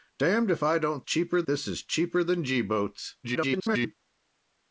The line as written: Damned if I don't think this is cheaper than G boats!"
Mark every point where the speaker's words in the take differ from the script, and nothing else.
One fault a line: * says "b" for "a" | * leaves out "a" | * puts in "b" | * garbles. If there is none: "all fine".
* says "cheaper" for "think"
* garbles